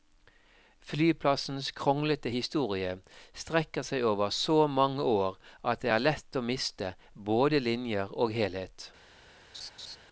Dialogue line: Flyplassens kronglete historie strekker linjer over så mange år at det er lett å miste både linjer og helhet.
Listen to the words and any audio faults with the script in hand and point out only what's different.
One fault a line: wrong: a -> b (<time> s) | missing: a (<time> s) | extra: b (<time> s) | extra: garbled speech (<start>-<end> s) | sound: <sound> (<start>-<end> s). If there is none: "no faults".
wrong: linjer -> seg (3.9 s)
sound: laugh (9.5-10.0 s)